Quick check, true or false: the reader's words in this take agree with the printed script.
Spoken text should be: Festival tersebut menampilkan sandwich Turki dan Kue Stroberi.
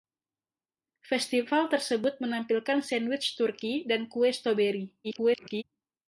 false